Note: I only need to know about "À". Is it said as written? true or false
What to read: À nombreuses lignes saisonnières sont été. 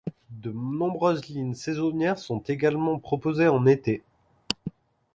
false